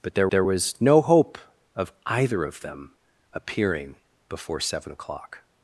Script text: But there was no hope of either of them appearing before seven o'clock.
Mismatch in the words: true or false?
true